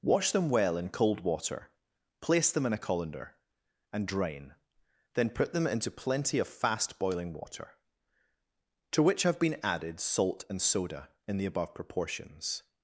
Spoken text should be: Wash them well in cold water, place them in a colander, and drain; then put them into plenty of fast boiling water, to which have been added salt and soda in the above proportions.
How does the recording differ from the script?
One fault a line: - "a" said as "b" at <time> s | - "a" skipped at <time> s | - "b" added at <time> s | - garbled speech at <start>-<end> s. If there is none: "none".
none